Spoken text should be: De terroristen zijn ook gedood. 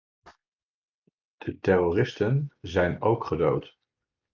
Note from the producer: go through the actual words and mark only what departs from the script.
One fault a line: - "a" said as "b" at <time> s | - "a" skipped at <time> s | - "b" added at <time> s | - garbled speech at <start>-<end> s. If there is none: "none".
none